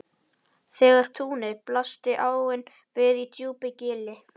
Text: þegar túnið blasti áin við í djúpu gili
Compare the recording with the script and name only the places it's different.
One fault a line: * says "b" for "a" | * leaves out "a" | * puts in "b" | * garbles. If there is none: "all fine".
all fine